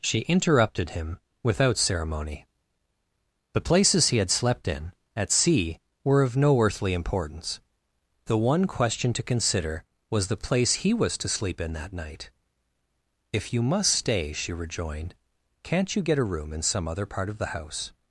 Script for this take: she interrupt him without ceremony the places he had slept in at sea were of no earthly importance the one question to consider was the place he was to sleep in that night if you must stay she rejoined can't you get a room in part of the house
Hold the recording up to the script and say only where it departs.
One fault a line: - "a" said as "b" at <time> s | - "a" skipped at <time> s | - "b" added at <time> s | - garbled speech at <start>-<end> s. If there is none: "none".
- "interrupt" said as "interrupted" at 0.2 s
- "some other" added at 16.6 s